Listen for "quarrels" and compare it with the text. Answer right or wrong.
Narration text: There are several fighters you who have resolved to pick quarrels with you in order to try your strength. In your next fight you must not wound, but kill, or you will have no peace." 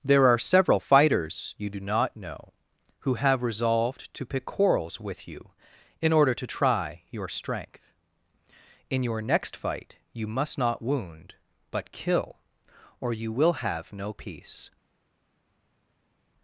right